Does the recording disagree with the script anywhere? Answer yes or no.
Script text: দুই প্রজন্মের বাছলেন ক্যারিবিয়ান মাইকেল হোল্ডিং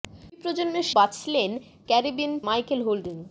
no